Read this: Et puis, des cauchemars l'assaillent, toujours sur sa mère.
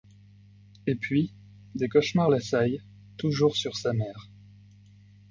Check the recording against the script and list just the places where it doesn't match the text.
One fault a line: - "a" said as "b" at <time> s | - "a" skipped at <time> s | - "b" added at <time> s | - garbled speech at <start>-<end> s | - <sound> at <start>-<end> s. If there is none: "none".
none